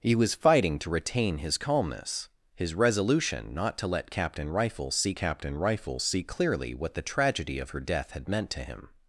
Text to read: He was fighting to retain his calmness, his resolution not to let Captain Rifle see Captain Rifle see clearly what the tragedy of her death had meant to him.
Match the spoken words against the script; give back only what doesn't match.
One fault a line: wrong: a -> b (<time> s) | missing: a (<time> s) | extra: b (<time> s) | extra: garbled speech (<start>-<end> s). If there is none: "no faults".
no faults